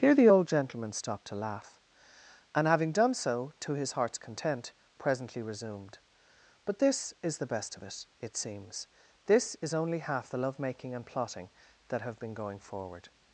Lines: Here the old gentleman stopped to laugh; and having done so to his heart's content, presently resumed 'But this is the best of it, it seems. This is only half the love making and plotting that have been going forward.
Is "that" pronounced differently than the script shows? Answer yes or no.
no